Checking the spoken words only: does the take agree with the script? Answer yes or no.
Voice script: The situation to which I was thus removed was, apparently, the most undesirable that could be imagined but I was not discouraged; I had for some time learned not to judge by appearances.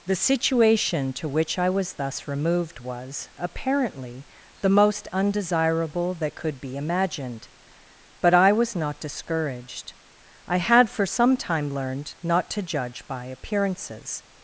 yes